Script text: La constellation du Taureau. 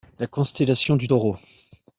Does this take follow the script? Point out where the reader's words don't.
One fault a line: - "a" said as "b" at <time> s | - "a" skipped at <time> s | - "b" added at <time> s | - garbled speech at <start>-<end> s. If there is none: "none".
none